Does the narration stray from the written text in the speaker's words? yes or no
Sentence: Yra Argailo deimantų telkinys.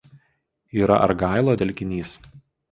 yes